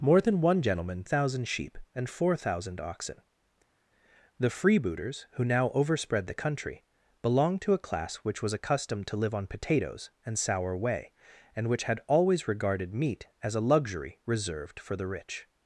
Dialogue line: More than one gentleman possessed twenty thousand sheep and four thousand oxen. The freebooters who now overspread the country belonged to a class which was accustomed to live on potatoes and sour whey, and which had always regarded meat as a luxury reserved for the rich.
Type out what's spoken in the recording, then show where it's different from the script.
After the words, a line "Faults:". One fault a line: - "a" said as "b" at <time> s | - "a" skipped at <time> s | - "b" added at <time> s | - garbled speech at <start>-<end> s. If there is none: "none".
More than one gentleman thousand sheep and four thousand oxen. The freebooters who now overspread the country belonged to a class which was accustomed to live on potatoes and sour whey, and which had always regarded meat as a luxury reserved for the rich.
Faults:
- "possessed twenty" skipped at 1.0 s